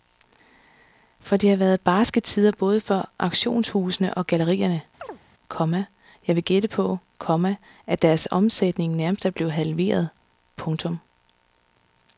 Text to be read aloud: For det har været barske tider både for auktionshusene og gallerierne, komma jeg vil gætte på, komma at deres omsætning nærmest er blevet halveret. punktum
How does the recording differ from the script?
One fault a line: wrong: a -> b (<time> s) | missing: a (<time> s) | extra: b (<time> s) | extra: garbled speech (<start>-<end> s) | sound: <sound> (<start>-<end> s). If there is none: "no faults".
sound: chirp (5.0-5.2 s)